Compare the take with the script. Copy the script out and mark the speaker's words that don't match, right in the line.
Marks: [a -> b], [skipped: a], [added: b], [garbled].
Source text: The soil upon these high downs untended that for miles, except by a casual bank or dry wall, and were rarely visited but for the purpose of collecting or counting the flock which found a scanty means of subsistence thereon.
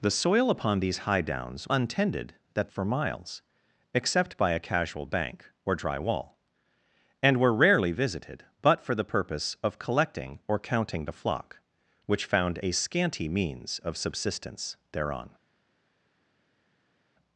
The soil upon these high downs untended that for miles, except by a casual bank or dry wall, and were rarely visited but for the purpose of collecting or counting the flock which found a scanty means of subsistence thereon.